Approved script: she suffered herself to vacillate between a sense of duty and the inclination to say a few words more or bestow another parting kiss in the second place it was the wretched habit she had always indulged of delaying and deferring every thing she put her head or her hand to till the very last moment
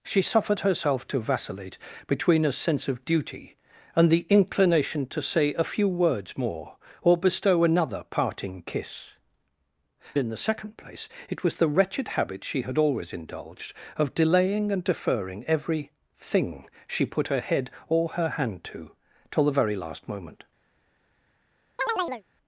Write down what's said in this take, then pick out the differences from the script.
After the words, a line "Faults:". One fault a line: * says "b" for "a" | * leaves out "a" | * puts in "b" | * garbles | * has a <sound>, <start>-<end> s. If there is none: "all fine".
she suffered herself to vacillate between a sense of duty and the inclination to say a few words more or bestow another parting kiss in the second place it was the wretched habit she had always indulged of delaying and deferring every thing she put her head or her hand to till the very last moment
Faults:
* has a chirp, 21.8-22.2 s